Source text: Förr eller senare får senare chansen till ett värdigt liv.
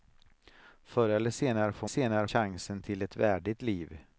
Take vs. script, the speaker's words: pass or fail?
pass